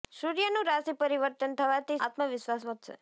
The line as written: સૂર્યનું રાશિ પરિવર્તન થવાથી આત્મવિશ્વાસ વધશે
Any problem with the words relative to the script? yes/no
no